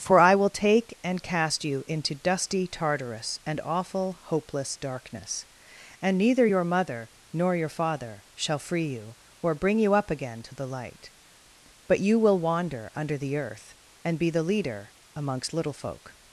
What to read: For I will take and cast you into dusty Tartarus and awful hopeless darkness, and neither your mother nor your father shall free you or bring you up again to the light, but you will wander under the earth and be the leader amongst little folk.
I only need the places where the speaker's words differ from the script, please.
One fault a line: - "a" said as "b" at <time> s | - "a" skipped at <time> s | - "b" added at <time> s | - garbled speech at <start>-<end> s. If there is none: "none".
none